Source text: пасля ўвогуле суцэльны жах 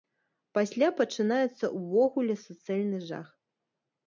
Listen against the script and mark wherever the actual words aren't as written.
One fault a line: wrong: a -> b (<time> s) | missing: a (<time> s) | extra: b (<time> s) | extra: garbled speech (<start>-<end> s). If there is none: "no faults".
extra: пачынаецца (1.0 s)